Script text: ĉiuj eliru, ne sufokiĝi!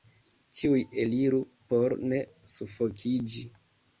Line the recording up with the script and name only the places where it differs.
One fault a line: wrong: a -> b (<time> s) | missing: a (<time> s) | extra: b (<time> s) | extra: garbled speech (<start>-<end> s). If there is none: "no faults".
extra: por (1.7 s)